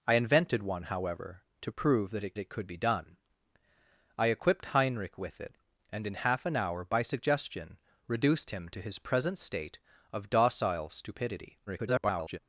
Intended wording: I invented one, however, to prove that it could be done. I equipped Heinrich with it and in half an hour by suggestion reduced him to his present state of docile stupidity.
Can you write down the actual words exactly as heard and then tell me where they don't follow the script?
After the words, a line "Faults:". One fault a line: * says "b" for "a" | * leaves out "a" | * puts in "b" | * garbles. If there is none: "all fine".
I invented one, however, to prove that it it could be done. I equipped Heinrich with it and in half an hour by suggestion reduced him to his present state of docile stupidity. [garbled]
Faults:
* puts in "it"
* garbles